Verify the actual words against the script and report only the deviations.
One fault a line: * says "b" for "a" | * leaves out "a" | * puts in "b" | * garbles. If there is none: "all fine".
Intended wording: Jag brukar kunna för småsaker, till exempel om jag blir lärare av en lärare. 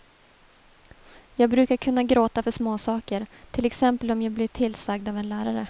* puts in "gråta"
* says "tillsagd" for "lärare"